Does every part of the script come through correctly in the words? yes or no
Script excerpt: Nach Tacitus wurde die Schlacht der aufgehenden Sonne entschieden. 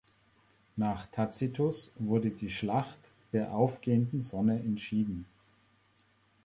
yes